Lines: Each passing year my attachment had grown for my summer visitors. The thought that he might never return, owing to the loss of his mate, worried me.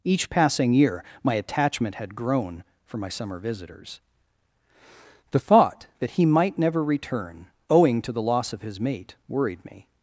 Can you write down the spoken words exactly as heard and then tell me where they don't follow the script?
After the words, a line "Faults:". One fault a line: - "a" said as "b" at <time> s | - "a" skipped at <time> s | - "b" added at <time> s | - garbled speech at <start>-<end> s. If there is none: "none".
Each passing year my attachment had grown for my summer visitors. The thought that he might never return, owing to the loss of his mate, worried me.
Faults:
none